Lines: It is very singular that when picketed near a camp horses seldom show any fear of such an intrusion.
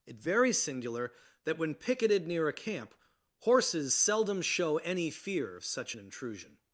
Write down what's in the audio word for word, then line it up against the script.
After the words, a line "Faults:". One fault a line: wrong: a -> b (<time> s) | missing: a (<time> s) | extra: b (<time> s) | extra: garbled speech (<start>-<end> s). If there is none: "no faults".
It very singular that when picketed near a camp horses seldom show any fear of such an intrusion.
Faults:
missing: is (0.2 s)